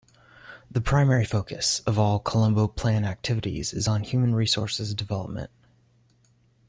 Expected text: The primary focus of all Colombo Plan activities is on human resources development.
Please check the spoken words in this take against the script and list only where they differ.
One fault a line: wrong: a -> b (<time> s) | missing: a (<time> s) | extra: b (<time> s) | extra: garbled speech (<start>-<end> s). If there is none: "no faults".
no faults